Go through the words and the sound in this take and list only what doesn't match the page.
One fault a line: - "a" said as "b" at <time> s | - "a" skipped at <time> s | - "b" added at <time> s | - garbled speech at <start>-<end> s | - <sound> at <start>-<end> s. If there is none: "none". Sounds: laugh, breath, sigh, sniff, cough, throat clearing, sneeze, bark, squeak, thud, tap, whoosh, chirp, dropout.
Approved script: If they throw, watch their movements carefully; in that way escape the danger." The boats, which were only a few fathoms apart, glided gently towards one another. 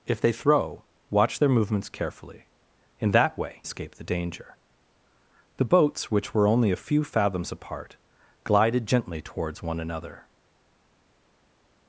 none